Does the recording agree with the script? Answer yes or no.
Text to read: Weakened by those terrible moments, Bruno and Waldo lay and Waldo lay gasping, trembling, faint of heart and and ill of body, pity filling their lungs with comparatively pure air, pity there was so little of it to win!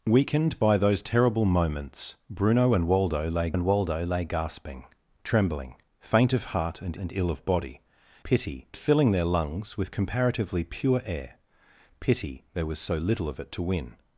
yes